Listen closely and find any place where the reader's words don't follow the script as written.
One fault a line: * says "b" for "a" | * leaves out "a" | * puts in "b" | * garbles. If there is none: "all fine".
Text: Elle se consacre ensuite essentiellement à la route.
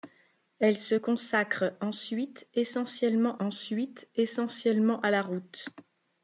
* puts in "ensuite essentiellement"